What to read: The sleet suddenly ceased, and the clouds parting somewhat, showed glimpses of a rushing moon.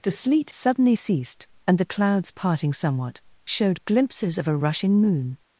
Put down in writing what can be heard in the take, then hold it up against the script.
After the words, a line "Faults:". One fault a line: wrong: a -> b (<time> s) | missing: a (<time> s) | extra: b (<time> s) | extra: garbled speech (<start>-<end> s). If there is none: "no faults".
The sleet suddenly ceased, and the clouds parting somewhat, showed glimpses of a rushing moon.
Faults:
no faults